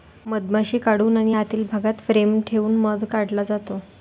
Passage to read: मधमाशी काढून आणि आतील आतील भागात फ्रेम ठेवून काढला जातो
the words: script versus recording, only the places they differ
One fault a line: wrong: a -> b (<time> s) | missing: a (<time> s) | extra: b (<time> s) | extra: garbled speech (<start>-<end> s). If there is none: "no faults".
missing: आतील (1.6 s)
extra: मध (2.8 s)